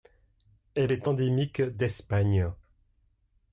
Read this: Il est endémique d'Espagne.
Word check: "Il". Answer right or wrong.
wrong